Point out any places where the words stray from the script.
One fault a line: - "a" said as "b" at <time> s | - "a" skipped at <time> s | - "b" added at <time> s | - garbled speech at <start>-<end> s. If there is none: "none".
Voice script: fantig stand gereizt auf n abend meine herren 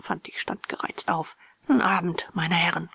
none